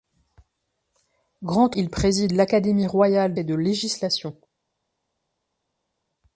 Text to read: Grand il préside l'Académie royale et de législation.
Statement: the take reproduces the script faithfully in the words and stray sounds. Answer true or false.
true